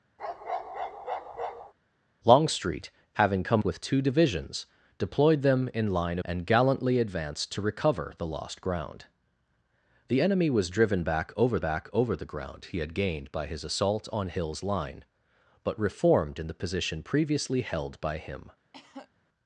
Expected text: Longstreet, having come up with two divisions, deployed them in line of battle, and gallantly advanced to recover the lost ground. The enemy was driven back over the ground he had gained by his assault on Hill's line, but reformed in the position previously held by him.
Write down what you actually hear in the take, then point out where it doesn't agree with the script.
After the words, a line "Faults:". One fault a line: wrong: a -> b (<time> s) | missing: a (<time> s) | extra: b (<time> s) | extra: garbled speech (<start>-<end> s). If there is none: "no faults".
Longstreet, having come with two divisions, deployed them in line and gallantly advanced to recover the lost ground. The enemy was driven back over back over the ground he had gained by his assault on Hill's line, but reformed in the position previously held by him.
Faults:
missing: up (3.6 s)
missing: of battle (6.2 s)
extra: back over (11.6 s)